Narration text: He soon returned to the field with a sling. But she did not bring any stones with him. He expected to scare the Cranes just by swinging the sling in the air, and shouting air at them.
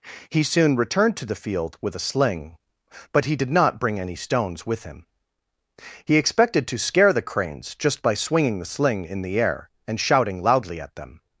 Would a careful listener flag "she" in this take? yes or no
yes